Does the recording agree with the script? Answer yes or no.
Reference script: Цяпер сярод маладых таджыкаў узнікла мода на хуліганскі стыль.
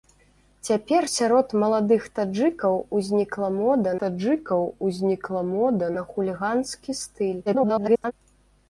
no